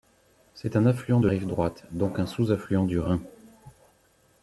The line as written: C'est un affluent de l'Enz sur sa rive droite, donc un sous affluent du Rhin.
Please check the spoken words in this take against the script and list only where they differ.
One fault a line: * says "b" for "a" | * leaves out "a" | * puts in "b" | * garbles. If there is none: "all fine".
* leaves out "l'Enz sur sa"